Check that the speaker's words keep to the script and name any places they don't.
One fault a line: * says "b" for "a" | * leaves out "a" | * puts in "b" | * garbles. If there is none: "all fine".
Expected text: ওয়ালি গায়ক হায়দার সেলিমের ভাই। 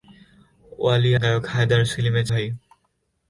all fine